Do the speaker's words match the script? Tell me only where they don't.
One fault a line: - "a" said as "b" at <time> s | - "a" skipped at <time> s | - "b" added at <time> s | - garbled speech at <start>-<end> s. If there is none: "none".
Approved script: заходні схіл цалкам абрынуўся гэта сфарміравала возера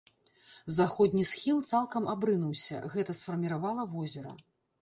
none